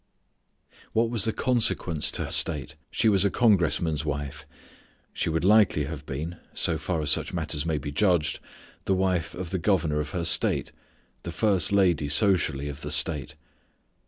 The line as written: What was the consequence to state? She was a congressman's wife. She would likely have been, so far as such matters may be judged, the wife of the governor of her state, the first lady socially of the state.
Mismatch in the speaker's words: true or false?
false